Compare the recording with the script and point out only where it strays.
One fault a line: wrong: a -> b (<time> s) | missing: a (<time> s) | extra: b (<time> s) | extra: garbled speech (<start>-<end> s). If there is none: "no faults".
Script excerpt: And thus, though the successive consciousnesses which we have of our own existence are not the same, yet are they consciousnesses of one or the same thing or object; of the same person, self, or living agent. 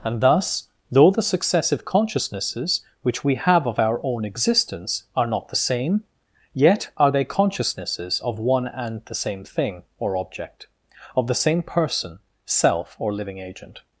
wrong: or -> and (8.7 s)